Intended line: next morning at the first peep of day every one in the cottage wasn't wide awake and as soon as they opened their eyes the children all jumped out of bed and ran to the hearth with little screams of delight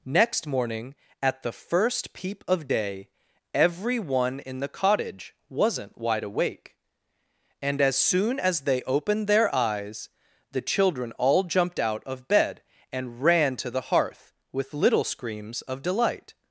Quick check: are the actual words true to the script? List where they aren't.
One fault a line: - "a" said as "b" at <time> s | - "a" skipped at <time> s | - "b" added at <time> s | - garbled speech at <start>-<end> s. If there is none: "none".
none